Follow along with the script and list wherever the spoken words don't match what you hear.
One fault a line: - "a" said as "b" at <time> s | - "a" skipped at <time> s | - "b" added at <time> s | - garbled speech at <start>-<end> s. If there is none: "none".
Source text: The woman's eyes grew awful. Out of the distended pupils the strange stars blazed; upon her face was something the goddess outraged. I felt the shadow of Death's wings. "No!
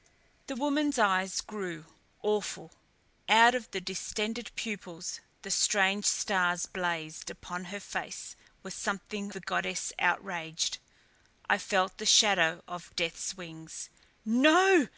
none